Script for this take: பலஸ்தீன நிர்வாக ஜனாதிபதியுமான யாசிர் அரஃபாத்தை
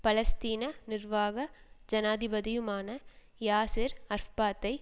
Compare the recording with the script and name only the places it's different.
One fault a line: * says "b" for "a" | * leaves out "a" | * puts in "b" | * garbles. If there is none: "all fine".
all fine